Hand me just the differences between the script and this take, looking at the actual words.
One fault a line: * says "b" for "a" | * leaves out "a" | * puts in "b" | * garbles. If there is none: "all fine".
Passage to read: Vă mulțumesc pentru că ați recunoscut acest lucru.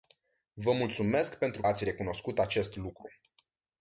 * leaves out "că"